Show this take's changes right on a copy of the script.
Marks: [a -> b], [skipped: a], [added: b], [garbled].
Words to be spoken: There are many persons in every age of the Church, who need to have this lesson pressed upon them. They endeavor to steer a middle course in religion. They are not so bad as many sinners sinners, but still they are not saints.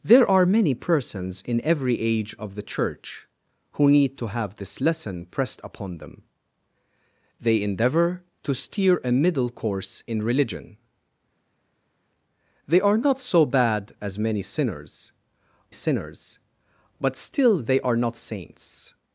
There are many persons in every age of the Church, who need to have this lesson pressed upon them. They endeavor to steer a middle course in religion. They are not so bad as many sinners sinners, but still they are not saints.